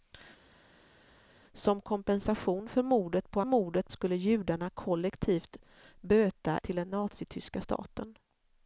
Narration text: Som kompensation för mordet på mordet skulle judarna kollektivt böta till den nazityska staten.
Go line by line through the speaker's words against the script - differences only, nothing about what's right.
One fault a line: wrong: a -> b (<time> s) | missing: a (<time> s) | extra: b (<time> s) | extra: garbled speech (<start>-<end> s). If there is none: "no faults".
no faults